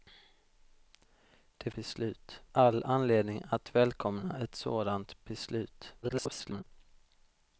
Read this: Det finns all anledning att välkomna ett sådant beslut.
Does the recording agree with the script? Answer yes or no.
no